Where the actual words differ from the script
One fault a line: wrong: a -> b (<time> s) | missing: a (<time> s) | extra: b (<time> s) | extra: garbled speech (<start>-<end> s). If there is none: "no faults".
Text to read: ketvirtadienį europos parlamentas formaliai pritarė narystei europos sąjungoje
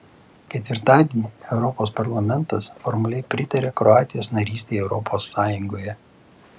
extra: kroatijos (3.8 s)